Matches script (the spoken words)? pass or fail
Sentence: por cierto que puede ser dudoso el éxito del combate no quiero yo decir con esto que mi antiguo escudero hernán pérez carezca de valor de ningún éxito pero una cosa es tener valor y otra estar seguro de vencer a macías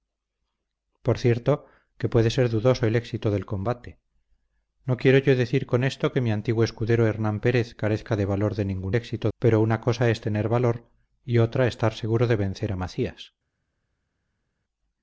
pass